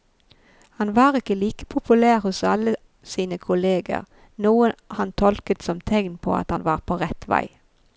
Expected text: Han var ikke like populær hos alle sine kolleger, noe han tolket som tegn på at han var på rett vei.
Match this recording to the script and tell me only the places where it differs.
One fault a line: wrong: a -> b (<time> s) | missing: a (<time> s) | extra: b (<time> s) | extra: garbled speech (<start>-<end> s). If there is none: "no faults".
no faults